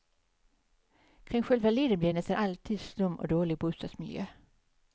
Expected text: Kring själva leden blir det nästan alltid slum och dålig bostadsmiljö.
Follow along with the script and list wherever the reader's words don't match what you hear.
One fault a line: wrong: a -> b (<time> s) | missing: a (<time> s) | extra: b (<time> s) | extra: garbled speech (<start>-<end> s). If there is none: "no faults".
no faults